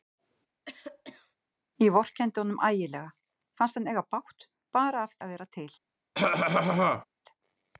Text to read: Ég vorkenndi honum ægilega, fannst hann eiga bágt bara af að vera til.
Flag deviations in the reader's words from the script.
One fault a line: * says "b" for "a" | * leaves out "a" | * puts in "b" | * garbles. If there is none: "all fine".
all fine